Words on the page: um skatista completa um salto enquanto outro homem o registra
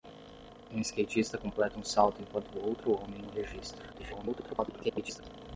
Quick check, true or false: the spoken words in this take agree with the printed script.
false